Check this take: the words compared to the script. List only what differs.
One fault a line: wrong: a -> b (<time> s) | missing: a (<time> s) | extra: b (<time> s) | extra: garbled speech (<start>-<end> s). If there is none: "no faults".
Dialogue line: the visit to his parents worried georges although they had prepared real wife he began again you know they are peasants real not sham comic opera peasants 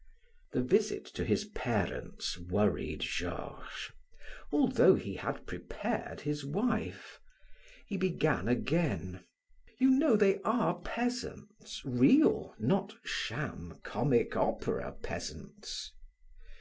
wrong: they -> he (4.9 s)
wrong: real -> his (6.2 s)